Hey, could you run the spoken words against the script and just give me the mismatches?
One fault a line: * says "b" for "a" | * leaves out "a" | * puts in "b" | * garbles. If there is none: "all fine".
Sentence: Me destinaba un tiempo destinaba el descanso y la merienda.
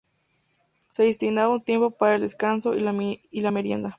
* says "Se" for "Me"
* says "para" for "destinaba"